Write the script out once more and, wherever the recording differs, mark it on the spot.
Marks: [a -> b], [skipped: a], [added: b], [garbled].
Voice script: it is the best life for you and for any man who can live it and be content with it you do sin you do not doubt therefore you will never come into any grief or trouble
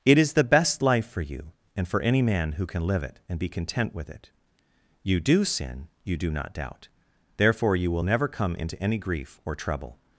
it is the best life for you and for any man who can live it and be content with it you do sin you do not doubt therefore you will never come into any grief or trouble